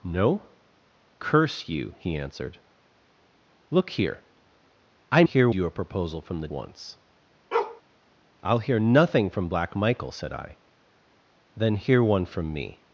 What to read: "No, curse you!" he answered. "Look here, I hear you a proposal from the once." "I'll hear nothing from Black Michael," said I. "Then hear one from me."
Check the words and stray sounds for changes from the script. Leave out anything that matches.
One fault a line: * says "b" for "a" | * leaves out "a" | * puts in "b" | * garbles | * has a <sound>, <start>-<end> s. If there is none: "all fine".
* has a bark, 7.5-7.8 s